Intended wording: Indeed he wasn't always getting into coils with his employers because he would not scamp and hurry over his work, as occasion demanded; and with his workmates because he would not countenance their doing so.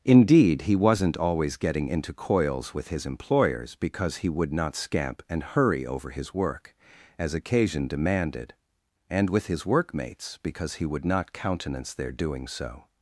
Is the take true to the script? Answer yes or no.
yes